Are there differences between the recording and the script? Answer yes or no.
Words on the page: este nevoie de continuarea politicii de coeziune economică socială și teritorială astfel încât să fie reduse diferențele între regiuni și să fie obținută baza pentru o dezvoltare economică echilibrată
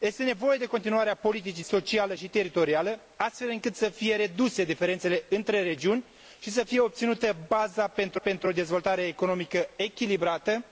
yes